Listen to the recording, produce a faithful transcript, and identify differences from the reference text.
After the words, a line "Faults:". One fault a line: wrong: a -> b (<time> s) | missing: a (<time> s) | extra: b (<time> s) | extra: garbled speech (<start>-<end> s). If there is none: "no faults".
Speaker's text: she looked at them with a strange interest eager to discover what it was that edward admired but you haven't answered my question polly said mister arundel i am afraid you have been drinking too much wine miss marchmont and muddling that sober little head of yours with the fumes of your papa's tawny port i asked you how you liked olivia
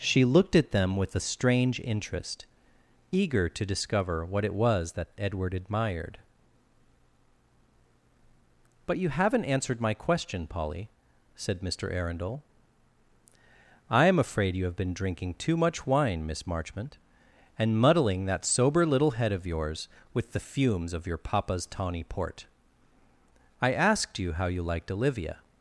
she looked at them with a strange interest eager to discover what it was that edward admired but you haven't answered my question polly said mister arundel i am afraid you have been drinking too much wine miss marchmont and muddling that sober little head of yours with the fumes of your papa's tawny port i asked you how you liked olivia
Faults:
no faults